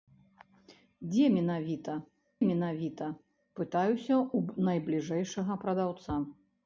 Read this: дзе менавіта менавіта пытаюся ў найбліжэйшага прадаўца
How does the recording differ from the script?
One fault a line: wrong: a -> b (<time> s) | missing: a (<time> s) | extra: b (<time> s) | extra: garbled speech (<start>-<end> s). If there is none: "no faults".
no faults